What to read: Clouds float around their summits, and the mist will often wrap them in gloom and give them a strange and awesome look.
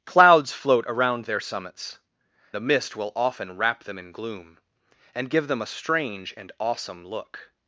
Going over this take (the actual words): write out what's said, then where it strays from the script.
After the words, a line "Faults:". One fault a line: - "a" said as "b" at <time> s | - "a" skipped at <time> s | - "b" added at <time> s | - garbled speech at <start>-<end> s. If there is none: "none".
Clouds float around their summits, the mist will often wrap them in gloom and give them a strange and awesome look.
Faults:
- "and" skipped at 2.0 s